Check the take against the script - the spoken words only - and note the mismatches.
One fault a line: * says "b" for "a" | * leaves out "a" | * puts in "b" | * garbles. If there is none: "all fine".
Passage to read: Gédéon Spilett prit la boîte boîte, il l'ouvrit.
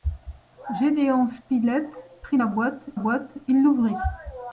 all fine